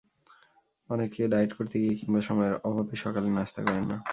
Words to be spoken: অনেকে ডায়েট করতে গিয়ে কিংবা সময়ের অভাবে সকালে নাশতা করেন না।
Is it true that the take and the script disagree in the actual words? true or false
false